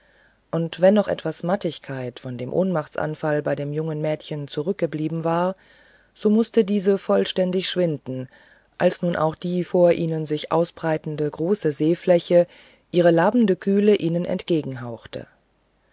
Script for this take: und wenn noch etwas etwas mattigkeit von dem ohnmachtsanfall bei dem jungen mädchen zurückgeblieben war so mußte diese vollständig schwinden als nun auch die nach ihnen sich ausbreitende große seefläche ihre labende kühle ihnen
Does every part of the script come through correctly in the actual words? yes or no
no